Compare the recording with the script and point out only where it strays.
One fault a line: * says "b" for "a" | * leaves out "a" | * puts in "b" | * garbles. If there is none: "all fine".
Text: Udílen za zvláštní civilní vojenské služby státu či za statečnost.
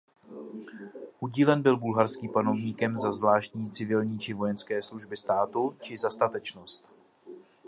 * puts in "byl bulharským panovníkem"
* puts in "či"